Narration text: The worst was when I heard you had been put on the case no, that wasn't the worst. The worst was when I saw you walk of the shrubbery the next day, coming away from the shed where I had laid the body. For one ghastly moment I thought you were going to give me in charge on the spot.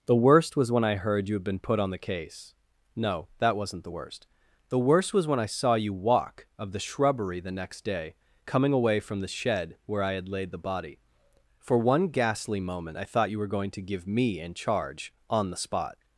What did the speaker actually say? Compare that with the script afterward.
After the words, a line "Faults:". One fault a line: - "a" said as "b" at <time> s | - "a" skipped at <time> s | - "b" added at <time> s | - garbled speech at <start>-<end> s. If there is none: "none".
The worst was when I heard you had been put on the case no, that wasn't the worst. The worst was when I saw you walk of the shrubbery the next day, coming away from the shed where I had laid the body. For one ghastly moment I thought you were going to give me in charge on the spot.
Faults:
none